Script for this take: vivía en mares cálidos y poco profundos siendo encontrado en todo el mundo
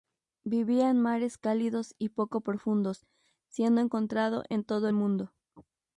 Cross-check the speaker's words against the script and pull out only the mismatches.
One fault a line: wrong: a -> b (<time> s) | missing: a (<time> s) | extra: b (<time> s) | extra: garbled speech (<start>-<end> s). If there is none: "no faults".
no faults